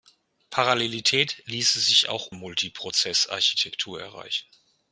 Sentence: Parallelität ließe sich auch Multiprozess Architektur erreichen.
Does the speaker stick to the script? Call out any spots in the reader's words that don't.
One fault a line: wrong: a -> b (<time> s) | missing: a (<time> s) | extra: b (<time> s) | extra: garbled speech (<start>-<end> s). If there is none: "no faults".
no faults